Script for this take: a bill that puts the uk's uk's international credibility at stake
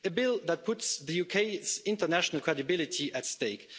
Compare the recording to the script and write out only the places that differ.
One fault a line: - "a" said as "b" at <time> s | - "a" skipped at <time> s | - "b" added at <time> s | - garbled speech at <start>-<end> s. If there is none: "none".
- "uk's" skipped at 1.8 s